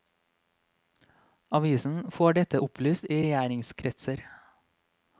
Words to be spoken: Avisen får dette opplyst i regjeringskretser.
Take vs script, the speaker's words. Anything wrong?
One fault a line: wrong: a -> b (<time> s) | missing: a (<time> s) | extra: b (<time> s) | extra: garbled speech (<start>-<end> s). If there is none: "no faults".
no faults